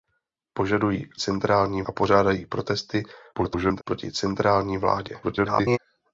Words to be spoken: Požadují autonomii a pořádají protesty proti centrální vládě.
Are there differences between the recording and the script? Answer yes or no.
yes